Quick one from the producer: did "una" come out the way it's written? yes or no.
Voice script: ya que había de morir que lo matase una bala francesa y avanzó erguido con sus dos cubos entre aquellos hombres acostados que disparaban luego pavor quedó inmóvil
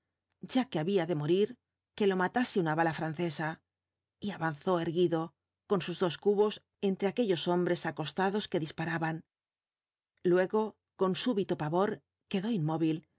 yes